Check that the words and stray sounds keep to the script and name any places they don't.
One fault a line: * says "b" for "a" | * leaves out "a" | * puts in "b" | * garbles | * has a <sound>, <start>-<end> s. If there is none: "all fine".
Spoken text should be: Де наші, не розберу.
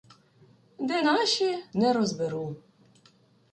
all fine